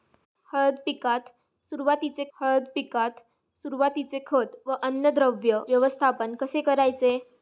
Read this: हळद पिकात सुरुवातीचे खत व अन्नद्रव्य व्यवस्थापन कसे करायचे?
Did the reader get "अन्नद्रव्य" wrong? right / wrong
right